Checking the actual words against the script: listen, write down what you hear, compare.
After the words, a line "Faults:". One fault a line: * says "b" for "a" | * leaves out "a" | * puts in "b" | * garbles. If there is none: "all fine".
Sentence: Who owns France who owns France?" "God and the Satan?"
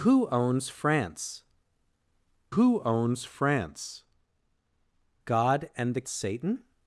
Who owns France who owns France?" "God and the Satan?"
Faults:
all fine